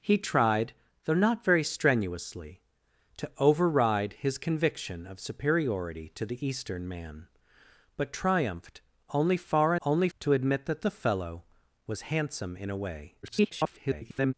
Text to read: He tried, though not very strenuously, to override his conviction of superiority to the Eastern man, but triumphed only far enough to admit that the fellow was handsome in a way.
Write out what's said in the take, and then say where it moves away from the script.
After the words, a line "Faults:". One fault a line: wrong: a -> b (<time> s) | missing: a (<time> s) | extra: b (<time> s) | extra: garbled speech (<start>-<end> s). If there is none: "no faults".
He tried, though not very strenuously, to override his conviction of superiority to the Eastern man, but triumphed only far only to admit that the fellow was handsome in a way. [garbled]
Faults:
wrong: enough -> only (9.8 s)
extra: garbled speech (13.2-14.3 s)